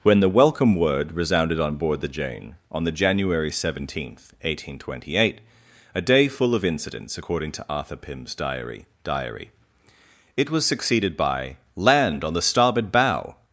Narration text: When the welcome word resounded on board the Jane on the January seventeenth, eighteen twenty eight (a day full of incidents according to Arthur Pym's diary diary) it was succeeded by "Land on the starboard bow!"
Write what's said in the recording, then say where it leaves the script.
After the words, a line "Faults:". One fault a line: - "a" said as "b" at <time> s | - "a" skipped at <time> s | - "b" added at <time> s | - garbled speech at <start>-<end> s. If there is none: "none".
When the welcome word resounded on board the Jane on the January seventeenth, eighteen twenty eight (a day full of incidents according to Arthur Pym's diary diary) it was succeeded by "Land on the starboard bow!"
Faults:
none